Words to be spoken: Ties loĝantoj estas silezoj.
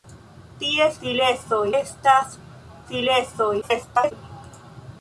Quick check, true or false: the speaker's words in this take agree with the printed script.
false